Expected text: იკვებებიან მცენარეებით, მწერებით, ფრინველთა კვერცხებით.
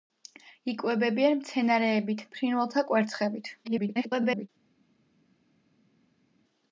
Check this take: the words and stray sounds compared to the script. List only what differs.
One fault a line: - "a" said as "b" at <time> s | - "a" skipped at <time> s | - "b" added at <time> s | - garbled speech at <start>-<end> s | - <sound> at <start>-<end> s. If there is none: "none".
- "მწერებით" skipped at 2.2 s
- garbled speech at 3.6-4.5 s